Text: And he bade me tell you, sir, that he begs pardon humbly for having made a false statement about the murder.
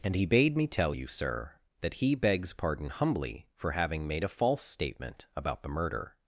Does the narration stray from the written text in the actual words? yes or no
no